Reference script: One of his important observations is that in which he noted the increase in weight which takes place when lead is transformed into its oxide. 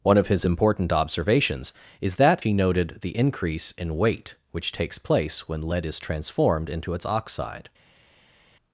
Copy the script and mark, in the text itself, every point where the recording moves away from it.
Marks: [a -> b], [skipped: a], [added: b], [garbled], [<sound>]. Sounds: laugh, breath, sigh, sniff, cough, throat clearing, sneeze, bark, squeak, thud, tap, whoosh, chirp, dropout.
One of his important observations is that [skipped: in which] he noted the increase in weight which takes place when lead is transformed into its oxide.